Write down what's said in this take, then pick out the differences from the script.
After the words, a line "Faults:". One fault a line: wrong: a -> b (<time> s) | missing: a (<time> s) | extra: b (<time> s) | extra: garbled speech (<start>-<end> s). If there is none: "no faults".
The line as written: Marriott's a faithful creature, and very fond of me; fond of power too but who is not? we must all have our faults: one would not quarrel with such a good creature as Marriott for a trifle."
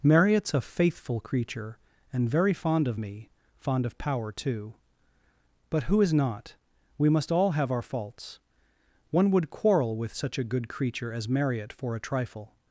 Marriott's a faithful creature, and very fond of me; fond of power too but who is not? we must all have our faults: one would quarrel with such a good creature as Marriott for a trifle."
Faults:
missing: not (9.5 s)